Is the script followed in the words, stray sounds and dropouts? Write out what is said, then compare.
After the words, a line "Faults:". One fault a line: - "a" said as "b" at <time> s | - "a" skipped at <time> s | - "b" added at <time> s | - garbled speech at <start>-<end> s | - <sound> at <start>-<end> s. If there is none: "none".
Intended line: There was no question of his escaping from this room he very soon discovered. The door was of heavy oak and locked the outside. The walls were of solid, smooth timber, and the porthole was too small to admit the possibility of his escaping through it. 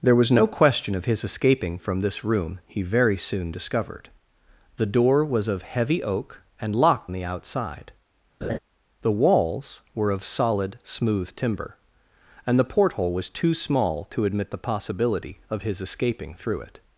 There was no question of his escaping from this room he very soon discovered. The door was of heavy oak and locked the outside. The walls were of solid, smooth timber, and the porthole was too small to admit the possibility of his escaping through it.
Faults:
- laugh at 8.4-8.6 s